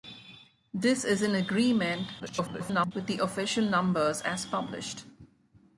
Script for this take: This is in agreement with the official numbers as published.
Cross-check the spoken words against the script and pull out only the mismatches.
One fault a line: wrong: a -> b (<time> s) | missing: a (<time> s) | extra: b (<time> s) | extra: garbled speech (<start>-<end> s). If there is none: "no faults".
extra: garbled speech (2.2-2.9 s)